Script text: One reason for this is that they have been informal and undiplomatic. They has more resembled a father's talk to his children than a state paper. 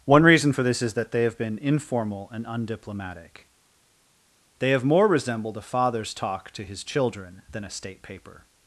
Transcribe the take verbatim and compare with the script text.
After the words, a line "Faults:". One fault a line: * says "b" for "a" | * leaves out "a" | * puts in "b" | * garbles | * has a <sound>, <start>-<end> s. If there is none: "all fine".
One reason for this is that they have been informal and undiplomatic. They have more resembled a father's talk to his children than a state paper.
Faults:
* says "have" for "has"